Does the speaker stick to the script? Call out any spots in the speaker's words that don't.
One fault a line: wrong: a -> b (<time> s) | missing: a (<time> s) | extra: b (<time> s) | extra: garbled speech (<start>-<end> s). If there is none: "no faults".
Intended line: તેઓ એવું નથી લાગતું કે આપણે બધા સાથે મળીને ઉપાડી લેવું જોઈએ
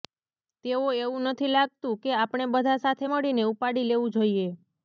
no faults